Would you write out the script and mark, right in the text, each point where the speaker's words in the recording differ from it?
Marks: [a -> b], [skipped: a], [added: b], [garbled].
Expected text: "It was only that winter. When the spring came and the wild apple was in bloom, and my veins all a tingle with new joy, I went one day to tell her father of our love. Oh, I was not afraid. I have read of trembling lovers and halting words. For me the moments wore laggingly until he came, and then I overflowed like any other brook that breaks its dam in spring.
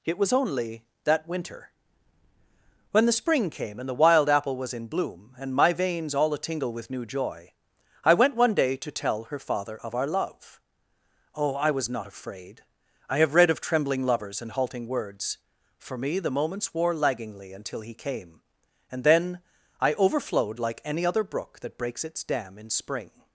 "It was only that winter. When the spring came and the wild apple was in bloom, and my veins all a tingle with new joy, I went one day to tell her father of our love. Oh, I was not afraid. I have read of trembling lovers and halting words. For me the moments wore laggingly until he came, and then I overflowed like any other brook that breaks its dam in spring.